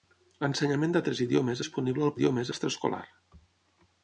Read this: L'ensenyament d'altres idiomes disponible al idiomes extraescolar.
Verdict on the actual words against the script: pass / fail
pass